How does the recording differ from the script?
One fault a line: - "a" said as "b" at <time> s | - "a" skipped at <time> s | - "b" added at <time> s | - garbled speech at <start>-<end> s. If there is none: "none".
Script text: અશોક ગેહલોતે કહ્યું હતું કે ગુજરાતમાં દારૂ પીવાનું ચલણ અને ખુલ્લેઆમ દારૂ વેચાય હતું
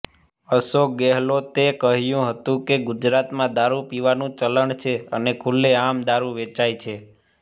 - "છે" added at 4.8 s
- "હતું" said as "છે" at 6.8 s